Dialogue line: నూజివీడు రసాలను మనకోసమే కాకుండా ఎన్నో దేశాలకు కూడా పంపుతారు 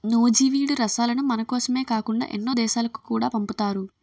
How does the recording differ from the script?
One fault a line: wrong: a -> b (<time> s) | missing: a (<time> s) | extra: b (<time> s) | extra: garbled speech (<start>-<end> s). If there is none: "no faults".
no faults